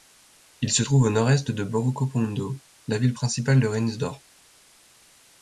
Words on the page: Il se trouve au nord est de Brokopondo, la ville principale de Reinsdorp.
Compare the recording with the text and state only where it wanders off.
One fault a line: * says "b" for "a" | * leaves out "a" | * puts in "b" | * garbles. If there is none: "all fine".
all fine